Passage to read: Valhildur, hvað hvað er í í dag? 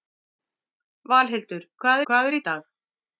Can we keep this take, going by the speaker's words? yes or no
yes